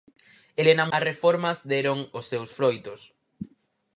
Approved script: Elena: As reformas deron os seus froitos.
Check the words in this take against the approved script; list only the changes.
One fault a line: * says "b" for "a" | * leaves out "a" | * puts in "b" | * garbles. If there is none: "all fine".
all fine